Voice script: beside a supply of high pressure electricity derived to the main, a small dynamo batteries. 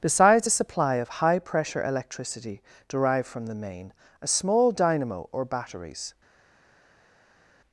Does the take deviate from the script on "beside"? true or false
true